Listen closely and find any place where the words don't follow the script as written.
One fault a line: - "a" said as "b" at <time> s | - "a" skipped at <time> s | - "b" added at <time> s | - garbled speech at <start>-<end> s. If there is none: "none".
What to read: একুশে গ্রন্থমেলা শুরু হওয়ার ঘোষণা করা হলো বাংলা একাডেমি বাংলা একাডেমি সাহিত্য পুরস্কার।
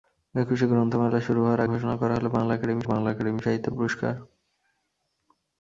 none